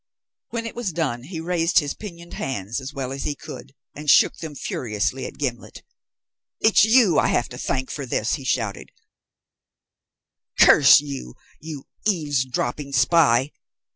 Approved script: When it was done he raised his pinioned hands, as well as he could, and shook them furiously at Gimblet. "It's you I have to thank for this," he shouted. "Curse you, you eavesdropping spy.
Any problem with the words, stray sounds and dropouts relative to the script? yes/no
no